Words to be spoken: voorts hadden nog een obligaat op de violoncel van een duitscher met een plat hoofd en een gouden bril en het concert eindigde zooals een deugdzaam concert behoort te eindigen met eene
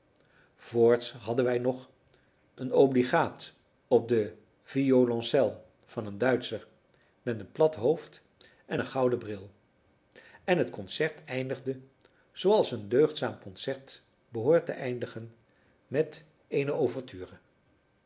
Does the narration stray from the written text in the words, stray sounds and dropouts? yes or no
yes